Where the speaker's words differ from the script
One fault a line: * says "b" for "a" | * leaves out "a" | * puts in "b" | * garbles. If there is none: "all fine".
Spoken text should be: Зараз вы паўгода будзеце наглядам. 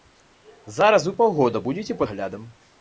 all fine